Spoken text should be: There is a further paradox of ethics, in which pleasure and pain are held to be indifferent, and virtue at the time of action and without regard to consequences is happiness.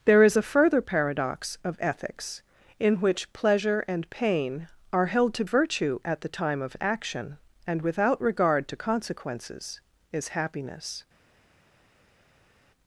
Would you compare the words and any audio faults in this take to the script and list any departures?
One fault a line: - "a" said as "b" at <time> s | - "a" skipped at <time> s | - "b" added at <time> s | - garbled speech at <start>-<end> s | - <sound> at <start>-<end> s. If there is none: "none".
- "be indifferent and" skipped at 5.4 s